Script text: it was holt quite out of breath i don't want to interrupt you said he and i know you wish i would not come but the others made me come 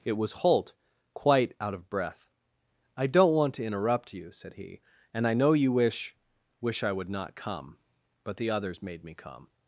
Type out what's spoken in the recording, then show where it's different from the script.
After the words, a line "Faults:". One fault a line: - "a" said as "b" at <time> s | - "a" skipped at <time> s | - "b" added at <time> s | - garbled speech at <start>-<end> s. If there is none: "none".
it was holt quite out of breath i don't want to interrupt you said he and i know you wish wish i would not come but the others made me come
Faults:
- "wish" added at 6.6 s